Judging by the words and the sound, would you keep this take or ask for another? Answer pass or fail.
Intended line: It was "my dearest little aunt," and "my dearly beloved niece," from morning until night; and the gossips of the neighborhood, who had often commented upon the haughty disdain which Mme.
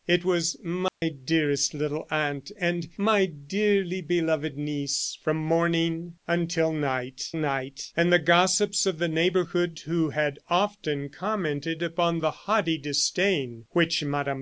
fail